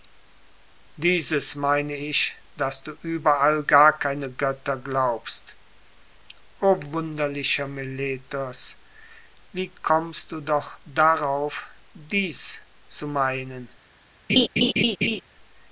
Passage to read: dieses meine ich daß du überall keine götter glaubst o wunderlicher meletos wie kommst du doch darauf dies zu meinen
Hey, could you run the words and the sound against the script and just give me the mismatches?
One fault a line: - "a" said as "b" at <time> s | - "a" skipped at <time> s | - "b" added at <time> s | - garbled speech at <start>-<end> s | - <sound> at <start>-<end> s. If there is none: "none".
- "gar" added at 3.6 s
- laugh at 14.3-15.2 s